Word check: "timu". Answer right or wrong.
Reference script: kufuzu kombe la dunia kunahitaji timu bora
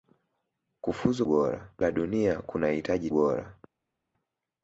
wrong